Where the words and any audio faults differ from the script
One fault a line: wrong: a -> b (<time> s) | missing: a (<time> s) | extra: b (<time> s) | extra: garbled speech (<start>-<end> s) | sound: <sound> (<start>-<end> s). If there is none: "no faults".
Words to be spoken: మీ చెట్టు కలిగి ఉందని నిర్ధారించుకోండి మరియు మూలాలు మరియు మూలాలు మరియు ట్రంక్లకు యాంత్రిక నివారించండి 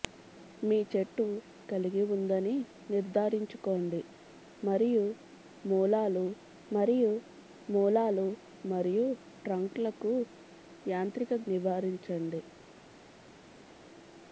no faults